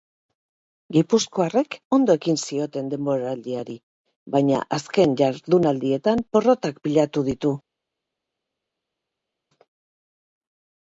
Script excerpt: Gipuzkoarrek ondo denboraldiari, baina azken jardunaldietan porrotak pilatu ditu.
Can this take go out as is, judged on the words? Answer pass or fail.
fail